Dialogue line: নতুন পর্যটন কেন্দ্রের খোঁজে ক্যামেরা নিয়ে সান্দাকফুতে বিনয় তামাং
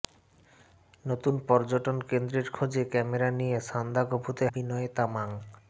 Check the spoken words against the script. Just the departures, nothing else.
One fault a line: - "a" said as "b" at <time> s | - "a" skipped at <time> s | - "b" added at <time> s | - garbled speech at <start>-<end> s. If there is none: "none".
none